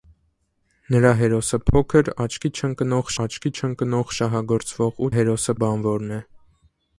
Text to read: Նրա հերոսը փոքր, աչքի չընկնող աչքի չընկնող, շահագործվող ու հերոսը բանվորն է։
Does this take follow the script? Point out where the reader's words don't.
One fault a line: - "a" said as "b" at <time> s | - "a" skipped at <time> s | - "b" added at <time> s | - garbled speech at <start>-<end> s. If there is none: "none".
none